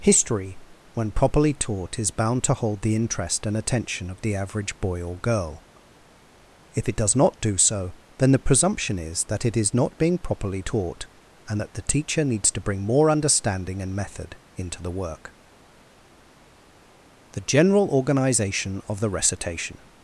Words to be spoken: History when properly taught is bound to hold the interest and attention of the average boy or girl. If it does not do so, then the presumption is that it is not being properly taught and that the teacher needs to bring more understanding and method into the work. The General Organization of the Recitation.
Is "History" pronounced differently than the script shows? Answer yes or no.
no